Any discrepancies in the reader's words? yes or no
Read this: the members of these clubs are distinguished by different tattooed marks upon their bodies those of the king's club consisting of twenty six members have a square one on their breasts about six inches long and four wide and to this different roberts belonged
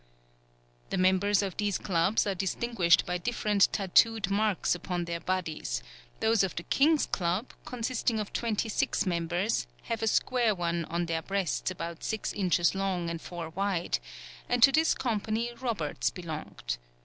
yes